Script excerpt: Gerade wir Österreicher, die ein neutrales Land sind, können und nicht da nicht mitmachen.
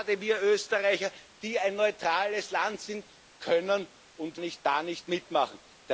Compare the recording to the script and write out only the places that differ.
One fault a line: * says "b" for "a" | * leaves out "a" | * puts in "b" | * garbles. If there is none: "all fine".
all fine